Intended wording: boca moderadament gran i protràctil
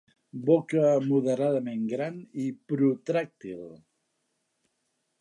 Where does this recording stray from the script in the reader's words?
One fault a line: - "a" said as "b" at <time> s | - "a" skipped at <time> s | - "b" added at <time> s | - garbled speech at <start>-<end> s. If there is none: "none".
none